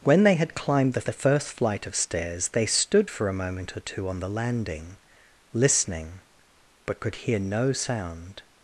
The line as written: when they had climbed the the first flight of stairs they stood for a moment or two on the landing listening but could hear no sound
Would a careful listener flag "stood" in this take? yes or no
no